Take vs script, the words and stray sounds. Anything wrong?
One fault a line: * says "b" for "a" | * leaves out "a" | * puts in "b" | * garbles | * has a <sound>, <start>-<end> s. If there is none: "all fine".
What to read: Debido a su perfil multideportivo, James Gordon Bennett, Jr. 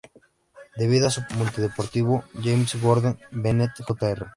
* leaves out "perfil"